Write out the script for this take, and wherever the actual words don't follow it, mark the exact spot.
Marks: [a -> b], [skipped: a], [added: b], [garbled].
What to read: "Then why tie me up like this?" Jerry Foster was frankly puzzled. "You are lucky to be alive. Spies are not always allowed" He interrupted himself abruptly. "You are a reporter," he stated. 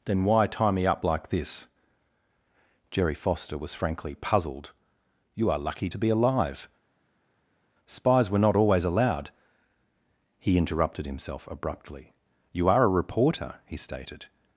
"Then why tie me up like this?" Jerry Foster was frankly puzzled. "You are lucky to be alive. Spies [are -> were] not always allowed" He interrupted himself abruptly. "You are a reporter," he stated.